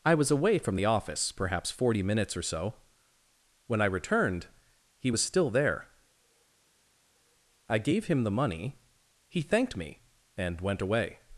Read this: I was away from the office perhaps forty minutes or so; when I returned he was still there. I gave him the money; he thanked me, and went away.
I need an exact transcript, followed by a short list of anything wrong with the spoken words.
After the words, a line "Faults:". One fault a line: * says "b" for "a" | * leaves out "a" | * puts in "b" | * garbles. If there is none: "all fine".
I was away from the office perhaps forty minutes or so; when I returned he was still there. I gave him the money; he thanked me, and went away.
Faults:
all fine